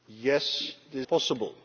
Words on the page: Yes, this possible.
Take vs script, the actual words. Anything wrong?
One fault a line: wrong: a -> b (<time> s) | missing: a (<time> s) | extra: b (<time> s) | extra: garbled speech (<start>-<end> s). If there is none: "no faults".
no faults